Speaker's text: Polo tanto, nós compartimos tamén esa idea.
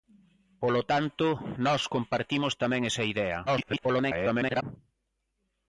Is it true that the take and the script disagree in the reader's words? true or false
true